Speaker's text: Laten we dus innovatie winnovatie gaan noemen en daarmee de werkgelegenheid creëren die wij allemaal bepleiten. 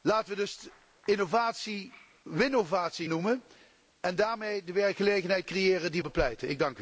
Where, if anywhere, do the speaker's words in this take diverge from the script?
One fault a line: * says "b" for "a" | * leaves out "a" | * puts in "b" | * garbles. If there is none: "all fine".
* leaves out "gaan"
* leaves out "wij allemaal"